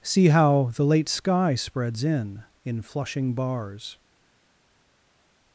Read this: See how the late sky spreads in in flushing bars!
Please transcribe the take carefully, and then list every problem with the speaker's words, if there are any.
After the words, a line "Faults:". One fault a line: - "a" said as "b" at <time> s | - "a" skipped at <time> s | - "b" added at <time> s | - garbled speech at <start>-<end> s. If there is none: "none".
See how the late sky spreads in in flushing bars!
Faults:
none